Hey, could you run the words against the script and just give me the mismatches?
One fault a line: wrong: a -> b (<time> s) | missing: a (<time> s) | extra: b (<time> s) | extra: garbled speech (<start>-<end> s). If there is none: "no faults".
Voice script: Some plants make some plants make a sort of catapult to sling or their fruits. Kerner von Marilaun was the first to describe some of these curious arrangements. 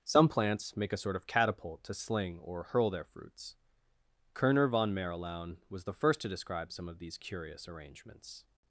missing: some plants make (0.9 s)
extra: hurl (2.6 s)